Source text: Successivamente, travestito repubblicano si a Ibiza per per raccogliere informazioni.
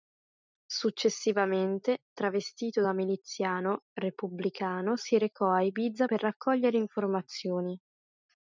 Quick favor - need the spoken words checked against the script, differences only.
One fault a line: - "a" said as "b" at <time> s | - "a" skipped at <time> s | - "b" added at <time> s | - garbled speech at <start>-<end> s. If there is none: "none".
- "da miliziano" added at 2.8 s
- "recò" added at 5.2 s
- "per" skipped at 6.2 s